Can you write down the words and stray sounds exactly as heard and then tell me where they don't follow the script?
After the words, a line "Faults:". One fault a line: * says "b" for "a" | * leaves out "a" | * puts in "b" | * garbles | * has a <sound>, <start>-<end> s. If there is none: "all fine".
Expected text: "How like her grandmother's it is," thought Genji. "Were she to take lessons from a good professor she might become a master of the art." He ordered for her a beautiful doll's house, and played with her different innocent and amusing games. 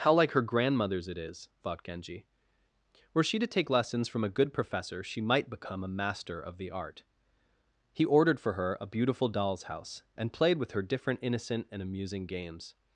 "How like her grandmother's it is," thought Genji. "Were she to take lessons from a good professor she might become a master of the art." He ordered for her a beautiful doll's house, and played with her different innocent and amusing games.
Faults:
all fine